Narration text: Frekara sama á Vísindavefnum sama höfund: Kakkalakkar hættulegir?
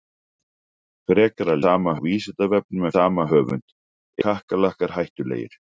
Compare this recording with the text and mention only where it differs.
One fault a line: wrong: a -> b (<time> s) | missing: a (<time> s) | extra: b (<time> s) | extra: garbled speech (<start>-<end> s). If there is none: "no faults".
no faults